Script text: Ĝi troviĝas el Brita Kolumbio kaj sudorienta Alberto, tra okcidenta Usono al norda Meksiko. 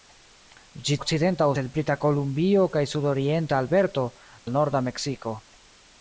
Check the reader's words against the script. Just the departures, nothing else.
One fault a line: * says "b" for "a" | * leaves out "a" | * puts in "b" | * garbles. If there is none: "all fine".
* says "okcidenta" for "troviĝas"
* leaves out "tra okcidenta Usono"